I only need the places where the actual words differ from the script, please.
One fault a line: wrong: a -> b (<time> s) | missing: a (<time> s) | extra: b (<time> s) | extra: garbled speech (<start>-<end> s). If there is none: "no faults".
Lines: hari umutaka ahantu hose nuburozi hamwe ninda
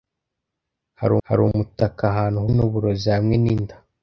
extra: hari (1.3 s)
missing: hose (2.4 s)